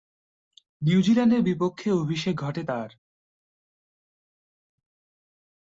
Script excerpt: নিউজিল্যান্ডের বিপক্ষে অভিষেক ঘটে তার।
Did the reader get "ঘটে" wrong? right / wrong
right